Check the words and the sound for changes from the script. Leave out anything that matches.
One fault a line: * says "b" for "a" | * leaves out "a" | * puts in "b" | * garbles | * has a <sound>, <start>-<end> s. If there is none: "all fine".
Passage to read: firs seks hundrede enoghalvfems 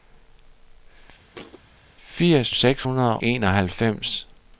* has a thud, 1.3-1.6 s